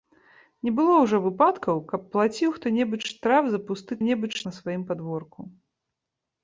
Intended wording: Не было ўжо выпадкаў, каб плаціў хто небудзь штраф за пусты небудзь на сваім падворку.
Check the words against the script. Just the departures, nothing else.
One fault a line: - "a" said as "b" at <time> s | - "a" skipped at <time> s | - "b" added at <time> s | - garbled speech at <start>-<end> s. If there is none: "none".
none